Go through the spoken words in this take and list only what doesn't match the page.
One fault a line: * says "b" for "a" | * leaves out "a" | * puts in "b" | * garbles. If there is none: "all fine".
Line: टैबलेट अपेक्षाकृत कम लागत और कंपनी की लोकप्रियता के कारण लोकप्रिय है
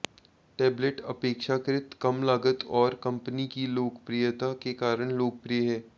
all fine